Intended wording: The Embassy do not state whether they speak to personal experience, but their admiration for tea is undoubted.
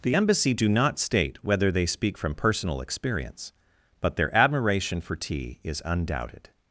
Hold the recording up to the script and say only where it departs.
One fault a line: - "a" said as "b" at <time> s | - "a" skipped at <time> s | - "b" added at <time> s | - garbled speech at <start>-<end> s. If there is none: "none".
- "to" said as "from" at 2.2 s